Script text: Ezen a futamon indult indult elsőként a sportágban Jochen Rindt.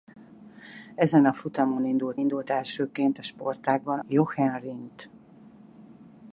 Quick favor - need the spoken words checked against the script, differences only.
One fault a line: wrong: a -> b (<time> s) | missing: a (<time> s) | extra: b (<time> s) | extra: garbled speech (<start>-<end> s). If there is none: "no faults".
no faults